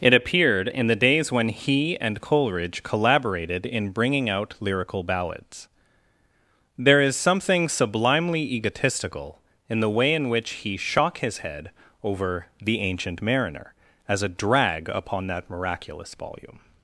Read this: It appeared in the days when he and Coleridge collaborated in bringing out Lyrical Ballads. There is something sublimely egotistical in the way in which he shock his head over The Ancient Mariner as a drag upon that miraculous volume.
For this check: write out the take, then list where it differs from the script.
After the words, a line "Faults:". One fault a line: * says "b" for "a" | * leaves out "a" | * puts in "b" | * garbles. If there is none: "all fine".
It appeared in the days when he and Coleridge collaborated in bringing out Lyrical Ballads. There is something sublimely egotistical in the way in which he shock his head over The Ancient Mariner as a drag upon that miraculous volume.
Faults:
all fine